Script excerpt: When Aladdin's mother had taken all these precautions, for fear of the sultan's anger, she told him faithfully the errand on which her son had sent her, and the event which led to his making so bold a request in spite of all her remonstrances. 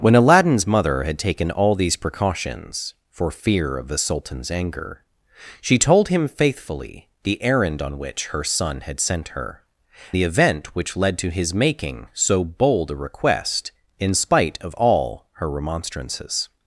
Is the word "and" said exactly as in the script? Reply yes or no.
no